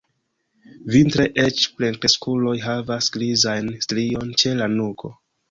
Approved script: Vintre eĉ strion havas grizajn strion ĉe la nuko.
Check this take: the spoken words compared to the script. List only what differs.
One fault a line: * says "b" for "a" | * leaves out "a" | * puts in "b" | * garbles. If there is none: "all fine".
* says "plenkreskuloj" for "strion"